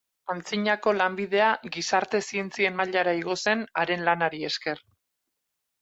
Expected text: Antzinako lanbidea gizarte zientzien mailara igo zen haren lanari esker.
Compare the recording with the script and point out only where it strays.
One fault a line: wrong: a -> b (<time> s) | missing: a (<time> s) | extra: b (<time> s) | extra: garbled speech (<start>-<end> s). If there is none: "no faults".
no faults